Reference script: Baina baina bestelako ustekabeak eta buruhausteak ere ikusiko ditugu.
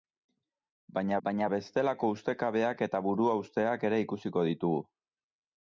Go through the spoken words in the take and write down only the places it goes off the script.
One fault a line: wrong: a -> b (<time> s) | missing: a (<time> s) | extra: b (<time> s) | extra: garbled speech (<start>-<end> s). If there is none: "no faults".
no faults